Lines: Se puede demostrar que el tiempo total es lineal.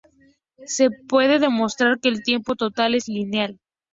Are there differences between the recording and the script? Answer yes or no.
no